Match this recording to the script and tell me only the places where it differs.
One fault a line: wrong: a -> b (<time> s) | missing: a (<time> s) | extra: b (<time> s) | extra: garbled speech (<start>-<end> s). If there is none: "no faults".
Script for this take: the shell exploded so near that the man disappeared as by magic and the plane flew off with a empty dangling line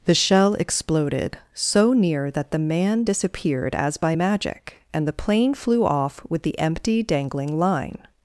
wrong: a -> the (6.4 s)